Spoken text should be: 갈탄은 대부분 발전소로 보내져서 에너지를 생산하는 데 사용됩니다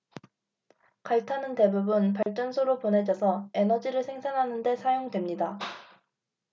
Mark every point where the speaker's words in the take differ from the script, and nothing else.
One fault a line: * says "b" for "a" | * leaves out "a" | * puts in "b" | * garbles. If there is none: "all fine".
all fine